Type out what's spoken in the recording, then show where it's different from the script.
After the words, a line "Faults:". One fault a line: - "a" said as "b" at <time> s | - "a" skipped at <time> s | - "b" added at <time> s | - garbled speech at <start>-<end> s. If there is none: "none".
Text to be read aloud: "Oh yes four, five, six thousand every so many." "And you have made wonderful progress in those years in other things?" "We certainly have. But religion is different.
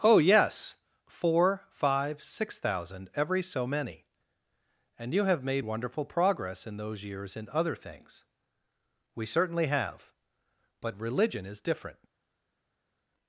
"Oh yes four, five, six thousand every so many." "And you have made wonderful progress in those years in other things?" "We certainly have. But religion is different.
Faults:
none